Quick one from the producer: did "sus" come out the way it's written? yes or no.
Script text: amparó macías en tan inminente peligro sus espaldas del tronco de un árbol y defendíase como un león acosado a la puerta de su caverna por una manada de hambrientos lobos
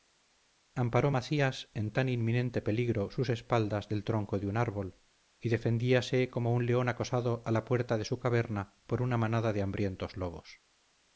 yes